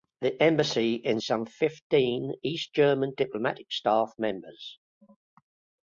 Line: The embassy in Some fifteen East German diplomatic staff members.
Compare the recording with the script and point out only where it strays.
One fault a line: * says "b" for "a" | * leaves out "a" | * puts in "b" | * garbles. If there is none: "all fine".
all fine